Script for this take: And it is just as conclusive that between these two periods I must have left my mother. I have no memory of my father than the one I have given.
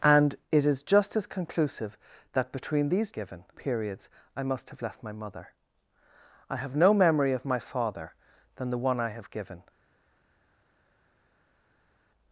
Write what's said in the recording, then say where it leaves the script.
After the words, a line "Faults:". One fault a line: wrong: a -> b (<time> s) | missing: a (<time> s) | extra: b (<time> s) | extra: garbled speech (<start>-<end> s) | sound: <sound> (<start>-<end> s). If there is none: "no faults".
And it is just as conclusive that between these given periods I must have left my mother. I have no memory of my father than the one I have given.
Faults:
wrong: two -> given (3.1 s)